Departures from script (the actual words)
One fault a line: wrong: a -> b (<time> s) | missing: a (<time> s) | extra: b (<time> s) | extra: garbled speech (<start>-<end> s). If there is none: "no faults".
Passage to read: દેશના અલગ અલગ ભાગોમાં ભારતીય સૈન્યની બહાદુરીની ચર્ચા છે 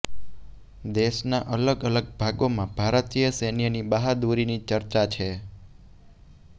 no faults